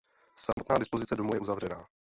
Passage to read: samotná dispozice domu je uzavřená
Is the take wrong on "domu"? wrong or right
right